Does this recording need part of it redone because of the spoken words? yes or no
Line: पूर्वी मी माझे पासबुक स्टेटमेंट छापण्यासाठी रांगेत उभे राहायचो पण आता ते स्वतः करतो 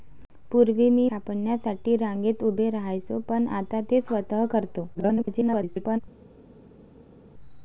yes